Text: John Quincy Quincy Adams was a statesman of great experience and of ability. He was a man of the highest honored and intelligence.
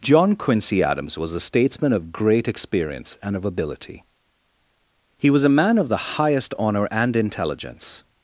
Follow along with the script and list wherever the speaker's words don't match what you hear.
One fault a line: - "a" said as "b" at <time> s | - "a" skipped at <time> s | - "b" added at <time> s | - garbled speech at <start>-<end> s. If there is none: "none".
- "Quincy" skipped at 0.8 s
- "honored" said as "honor" at 6.6 s